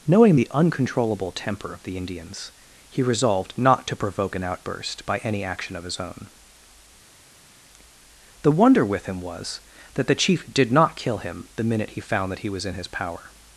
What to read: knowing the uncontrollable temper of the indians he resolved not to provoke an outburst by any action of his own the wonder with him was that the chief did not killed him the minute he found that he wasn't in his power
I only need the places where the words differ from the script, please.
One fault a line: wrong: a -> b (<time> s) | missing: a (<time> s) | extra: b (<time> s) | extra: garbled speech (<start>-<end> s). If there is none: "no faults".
wrong: killed -> kill (11.0 s)
wrong: wasn't -> was (12.5 s)